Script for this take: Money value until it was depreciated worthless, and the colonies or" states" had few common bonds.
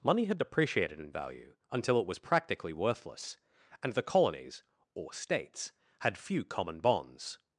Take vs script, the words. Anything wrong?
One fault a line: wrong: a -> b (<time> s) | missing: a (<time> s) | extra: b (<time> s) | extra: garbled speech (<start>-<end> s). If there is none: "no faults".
extra: had depreciated in (0.2 s)
wrong: depreciated -> practically (2.2 s)